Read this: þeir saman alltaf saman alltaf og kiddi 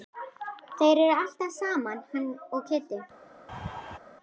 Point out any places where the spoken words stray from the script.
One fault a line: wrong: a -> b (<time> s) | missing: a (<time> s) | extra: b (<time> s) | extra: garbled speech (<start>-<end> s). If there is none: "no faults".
wrong: saman -> eru (1.0 s)
wrong: alltaf -> hann (2.1 s)